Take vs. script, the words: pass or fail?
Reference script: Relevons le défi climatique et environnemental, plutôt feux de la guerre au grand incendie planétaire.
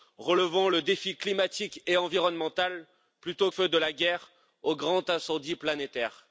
pass